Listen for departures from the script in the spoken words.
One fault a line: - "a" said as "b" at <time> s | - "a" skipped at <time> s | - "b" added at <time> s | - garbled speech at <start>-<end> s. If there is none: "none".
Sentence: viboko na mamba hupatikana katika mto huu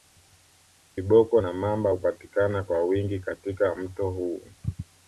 - "kwa wingi" added at 2.6 s